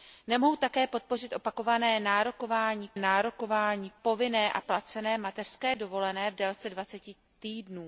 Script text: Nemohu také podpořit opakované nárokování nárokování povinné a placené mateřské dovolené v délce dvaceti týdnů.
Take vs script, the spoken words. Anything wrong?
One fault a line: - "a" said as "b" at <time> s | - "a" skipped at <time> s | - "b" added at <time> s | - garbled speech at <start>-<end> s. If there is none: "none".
none